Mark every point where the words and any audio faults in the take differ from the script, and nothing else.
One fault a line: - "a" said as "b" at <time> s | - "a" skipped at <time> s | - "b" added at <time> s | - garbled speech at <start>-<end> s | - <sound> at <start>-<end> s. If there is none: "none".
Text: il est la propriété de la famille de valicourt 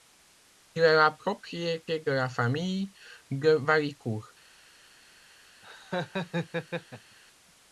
- laugh at 5.6-7.2 s